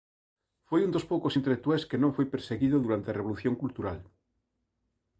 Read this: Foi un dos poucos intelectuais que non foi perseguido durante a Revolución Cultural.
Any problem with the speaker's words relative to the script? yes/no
no